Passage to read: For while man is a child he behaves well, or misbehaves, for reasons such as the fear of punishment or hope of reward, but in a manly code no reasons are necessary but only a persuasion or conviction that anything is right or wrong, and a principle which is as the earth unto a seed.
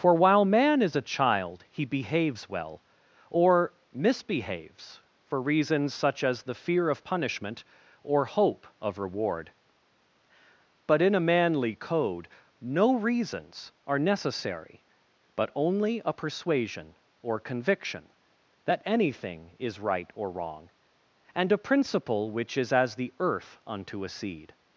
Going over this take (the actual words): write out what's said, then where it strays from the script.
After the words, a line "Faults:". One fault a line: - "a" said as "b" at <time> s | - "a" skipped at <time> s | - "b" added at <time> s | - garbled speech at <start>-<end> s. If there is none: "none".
For while man is a child he behaves well, or misbehaves, for reasons such as the fear of punishment or hope of reward, but in a manly code no reasons are necessary but only a persuasion or conviction that anything is right or wrong, and a principle which is as the earth unto a seed.
Faults:
none